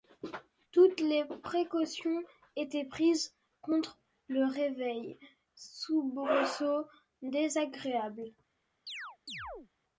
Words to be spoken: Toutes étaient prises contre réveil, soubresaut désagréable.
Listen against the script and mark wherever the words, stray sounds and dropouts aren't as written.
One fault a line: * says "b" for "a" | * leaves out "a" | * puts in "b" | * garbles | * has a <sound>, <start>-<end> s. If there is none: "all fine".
* puts in "les précautions"
* puts in "le"
* has a chirp, 8.9-9.7 s